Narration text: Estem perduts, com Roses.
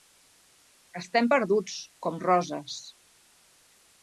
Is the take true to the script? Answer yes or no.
yes